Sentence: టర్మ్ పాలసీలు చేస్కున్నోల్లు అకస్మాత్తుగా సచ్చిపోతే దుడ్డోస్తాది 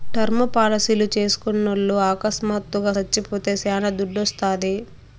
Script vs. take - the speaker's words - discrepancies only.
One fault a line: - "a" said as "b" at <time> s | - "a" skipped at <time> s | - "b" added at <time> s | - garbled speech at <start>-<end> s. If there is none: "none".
- "శానా" added at 3.6 s